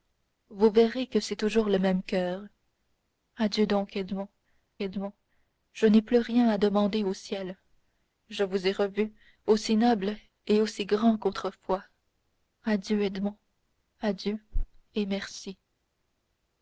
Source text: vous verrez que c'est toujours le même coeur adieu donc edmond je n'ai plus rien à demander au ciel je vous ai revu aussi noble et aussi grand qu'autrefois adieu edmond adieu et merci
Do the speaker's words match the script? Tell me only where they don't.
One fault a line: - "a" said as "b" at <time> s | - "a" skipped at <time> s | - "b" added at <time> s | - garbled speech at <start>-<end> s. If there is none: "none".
- "edmond" added at 4.8 s